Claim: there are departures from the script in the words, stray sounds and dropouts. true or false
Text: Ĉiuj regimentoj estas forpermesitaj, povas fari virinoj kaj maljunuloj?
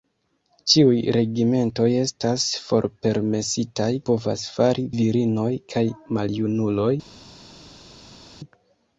false